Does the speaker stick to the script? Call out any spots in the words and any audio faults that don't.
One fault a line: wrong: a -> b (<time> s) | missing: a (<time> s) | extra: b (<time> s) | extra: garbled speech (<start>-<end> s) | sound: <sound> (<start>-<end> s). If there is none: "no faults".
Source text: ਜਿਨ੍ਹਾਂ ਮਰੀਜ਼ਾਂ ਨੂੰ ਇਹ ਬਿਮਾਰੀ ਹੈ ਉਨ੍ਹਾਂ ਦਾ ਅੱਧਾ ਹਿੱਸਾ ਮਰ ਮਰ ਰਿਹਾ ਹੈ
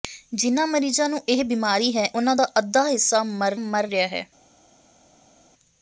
no faults